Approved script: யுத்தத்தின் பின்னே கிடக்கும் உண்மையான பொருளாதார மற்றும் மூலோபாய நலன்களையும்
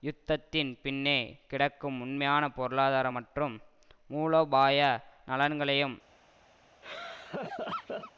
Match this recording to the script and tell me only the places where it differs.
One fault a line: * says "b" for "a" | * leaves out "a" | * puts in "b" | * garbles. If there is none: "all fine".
all fine